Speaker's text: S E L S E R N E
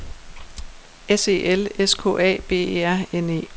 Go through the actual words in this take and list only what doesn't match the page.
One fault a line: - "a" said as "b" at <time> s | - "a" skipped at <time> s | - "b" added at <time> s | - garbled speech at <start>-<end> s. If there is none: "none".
- "K A B" added at 1.9 s